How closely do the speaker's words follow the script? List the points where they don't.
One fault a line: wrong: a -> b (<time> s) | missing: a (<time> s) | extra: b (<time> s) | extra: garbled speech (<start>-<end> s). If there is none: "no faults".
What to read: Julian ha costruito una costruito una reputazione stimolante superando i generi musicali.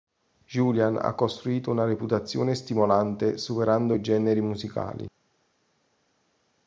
missing: costruito una (1.8 s)